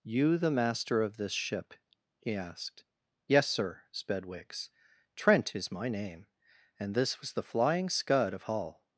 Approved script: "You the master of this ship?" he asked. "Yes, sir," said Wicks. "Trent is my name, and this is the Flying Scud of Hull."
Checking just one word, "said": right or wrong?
wrong